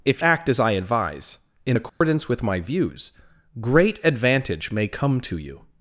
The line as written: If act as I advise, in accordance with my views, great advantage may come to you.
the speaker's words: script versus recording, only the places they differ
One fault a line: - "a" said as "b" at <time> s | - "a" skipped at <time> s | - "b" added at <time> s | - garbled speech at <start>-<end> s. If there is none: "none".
none